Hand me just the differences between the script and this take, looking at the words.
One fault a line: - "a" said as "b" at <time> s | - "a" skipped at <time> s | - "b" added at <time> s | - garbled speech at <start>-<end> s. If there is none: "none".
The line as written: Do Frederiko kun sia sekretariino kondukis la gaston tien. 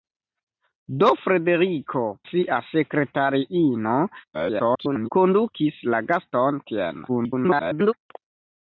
- "kun" skipped at 2.0 s
- garbled speech at 4.3-5.1 s
- garbled speech at 7.1-7.9 s